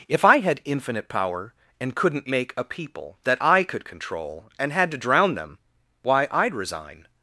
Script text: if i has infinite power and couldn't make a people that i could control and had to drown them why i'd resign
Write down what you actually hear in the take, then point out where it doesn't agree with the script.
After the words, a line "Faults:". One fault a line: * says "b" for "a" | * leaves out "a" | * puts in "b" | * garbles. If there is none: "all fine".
if i had infinite power and couldn't make a people that i could control and had to drown them why i'd resign
Faults:
* says "had" for "has"